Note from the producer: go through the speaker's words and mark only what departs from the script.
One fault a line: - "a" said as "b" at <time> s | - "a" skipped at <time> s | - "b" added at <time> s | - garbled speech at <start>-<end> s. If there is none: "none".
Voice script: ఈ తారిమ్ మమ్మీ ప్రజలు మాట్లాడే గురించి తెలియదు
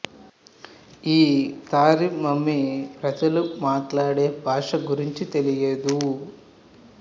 - "భాష" added at 4.4 s